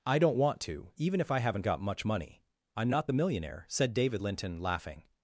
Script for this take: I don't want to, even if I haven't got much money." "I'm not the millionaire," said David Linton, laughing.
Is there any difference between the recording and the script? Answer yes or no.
no